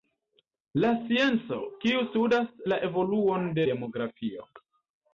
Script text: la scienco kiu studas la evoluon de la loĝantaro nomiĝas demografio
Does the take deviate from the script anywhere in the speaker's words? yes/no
yes